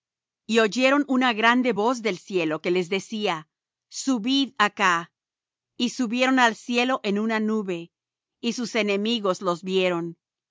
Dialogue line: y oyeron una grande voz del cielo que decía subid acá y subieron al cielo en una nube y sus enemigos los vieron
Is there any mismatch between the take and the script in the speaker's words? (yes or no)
yes